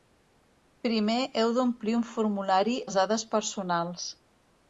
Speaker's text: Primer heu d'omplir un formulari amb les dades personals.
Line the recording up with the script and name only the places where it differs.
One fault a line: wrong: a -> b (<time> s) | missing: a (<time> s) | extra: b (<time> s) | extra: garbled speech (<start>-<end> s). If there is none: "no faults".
missing: amb (2.8 s)